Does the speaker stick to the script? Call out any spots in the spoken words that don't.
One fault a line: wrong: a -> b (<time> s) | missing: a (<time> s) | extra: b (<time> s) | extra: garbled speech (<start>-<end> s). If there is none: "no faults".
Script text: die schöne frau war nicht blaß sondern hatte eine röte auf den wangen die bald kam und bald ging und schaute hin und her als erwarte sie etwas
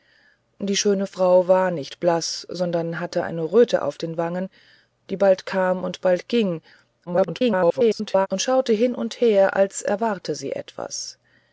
extra: garbled speech (7.1-8.3 s)